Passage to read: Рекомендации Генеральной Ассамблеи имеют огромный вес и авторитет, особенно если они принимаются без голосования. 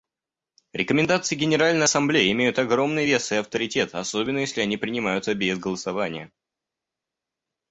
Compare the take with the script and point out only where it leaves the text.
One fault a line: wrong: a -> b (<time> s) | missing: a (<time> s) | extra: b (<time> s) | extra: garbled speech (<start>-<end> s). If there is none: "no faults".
no faults